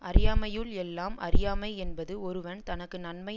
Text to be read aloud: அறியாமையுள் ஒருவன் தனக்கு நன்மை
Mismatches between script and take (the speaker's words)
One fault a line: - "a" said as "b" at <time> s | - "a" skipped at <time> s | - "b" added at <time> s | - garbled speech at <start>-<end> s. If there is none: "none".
- "எல்லாம் அறியாமை என்பது" added at 0.8 s